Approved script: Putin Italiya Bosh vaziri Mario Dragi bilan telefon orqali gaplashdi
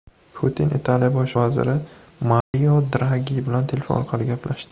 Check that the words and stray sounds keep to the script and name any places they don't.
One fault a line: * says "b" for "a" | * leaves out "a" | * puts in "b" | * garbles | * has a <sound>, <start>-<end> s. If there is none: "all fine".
* has a dropout, 2.4-2.5 s